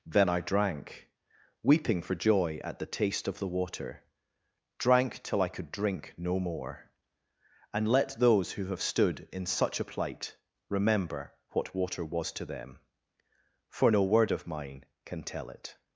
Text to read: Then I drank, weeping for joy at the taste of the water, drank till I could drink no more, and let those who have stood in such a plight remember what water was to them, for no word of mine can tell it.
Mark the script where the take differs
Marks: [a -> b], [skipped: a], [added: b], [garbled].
Then I drank, weeping for joy at the taste of the water, drank till I could drink no more, and let those who have stood in such a plight remember what water was to them, for no word of mine can tell it.